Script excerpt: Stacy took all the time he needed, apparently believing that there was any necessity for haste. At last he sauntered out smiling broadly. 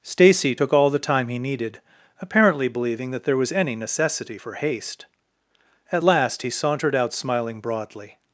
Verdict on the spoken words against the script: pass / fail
pass